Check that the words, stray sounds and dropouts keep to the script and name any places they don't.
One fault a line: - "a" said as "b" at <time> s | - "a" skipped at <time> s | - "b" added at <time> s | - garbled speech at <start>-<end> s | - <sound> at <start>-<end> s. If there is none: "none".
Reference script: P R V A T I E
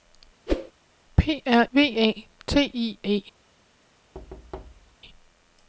- whoosh at 0.5-0.7 s
- thud at 4.1-5.0 s